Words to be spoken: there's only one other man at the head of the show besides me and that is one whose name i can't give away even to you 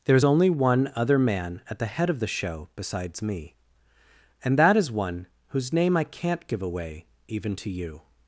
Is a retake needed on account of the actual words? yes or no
no